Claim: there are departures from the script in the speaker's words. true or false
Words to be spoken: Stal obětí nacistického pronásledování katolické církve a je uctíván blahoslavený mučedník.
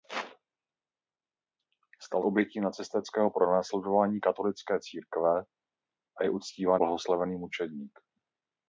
false